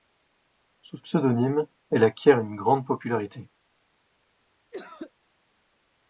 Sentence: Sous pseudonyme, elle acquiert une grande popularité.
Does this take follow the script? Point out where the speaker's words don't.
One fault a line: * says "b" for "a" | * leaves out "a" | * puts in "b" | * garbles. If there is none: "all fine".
all fine